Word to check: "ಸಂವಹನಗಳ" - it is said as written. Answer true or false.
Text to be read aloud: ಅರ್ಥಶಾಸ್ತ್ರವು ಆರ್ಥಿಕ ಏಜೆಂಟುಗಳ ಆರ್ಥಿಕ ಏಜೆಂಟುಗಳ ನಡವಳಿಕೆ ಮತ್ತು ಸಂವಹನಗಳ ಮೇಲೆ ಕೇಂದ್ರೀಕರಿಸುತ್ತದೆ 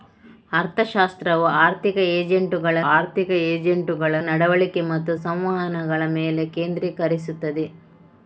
true